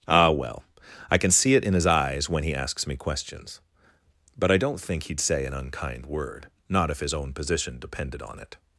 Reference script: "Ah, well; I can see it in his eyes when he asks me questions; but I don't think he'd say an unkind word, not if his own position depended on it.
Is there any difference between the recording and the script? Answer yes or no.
no